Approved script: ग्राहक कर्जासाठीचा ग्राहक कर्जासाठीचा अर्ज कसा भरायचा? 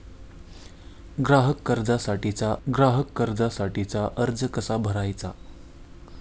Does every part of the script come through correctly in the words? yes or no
yes